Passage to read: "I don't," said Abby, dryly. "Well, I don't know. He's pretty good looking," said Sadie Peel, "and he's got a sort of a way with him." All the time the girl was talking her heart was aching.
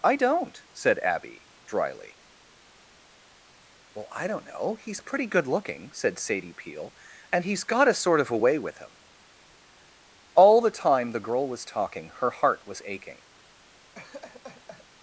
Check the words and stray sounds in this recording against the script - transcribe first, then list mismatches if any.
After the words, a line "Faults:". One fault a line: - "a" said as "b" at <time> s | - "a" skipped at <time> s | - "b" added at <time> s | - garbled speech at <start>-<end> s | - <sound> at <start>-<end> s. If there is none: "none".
"I don't," said Abby, dryly. "Well, I don't know. He's pretty good looking," said Sadie Peel, "and he's got a sort of a way with him." All the time the girl was talking her heart was aching.
Faults:
- laugh at 13.9-14.9 s